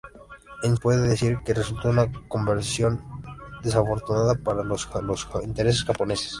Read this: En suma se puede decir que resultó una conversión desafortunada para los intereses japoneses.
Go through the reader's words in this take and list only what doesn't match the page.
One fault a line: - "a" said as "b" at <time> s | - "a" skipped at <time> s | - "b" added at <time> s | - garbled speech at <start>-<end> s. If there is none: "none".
- "suma se" skipped at 0.8 s
- "los" added at 5.0 s